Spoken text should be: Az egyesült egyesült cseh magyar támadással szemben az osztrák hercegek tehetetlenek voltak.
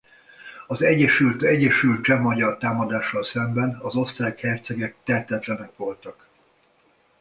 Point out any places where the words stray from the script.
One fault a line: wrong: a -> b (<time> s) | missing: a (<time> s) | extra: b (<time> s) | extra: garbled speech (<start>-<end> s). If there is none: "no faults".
no faults